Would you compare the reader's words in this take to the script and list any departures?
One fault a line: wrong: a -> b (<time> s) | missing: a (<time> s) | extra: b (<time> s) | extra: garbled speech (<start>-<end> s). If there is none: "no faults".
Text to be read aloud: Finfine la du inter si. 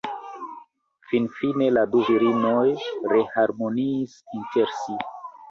extra: virinoj reharmoniis (2.1 s)